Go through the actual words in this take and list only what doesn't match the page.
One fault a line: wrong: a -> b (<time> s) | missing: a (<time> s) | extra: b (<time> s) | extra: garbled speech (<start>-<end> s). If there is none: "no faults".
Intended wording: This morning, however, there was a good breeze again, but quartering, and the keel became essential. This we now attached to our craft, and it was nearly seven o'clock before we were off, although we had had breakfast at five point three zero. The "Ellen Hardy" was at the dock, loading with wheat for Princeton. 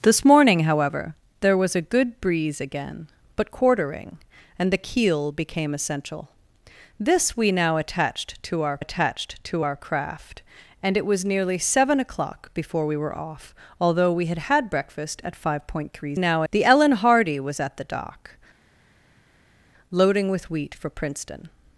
extra: attached to our (8.8 s)
wrong: zero -> now (16.2 s)